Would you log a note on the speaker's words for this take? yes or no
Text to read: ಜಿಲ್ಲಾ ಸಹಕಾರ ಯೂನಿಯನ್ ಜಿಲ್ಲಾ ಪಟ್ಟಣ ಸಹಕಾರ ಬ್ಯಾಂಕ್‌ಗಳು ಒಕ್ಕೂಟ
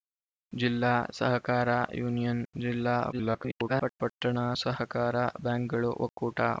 yes